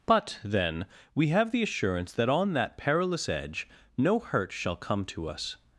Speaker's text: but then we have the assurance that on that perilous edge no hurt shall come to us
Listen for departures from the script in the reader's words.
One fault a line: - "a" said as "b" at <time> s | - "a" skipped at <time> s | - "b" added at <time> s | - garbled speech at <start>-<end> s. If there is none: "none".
none